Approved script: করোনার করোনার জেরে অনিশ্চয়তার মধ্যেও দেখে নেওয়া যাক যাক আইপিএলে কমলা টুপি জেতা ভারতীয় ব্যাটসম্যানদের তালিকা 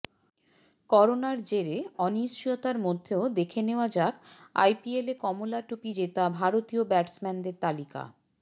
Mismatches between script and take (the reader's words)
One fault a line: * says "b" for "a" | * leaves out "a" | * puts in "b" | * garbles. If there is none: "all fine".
* leaves out "করোনার"
* leaves out "যাক"